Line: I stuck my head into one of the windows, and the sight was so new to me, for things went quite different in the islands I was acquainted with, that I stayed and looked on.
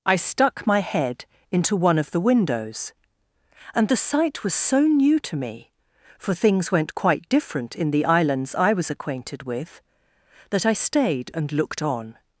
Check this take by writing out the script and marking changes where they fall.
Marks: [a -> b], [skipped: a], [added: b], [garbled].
I stuck my head into one of the windows, and the sight was so new to me, for things went quite different in the islands I was acquainted with, that I stayed and looked on.